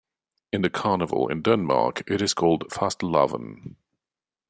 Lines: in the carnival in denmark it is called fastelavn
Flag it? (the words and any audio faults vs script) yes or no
no